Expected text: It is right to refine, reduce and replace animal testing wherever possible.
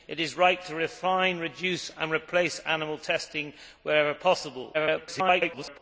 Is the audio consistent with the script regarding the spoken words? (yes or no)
no